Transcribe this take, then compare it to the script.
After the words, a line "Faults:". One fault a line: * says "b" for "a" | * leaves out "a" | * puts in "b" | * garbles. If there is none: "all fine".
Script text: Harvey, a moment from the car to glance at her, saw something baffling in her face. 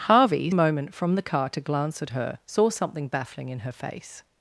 Harvey, a moment from the car to glance at her, saw something baffling in her face.
Faults:
all fine